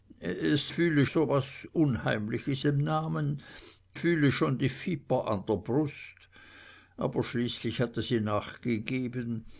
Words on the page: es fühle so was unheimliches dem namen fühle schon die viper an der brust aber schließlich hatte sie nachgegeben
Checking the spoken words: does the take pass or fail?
pass